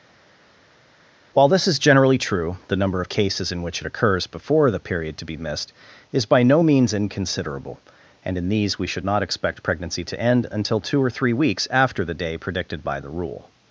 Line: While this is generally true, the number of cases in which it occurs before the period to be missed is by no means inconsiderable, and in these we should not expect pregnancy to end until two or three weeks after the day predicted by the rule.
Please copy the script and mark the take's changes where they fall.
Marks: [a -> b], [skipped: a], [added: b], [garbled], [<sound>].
While this is generally true, the number of cases in which it occurs before the period to be missed is by no means inconsiderable, and in these we should not expect pregnancy to end until two or three weeks after the day predicted by the rule.